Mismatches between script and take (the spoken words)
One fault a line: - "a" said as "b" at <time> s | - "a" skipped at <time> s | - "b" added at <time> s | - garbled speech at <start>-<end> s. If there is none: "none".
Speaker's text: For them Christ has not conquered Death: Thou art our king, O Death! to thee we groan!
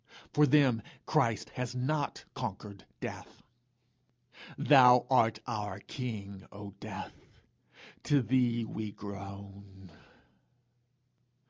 none